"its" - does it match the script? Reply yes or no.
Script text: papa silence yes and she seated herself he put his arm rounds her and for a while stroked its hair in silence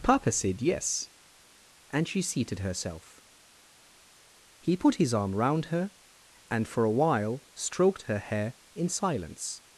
no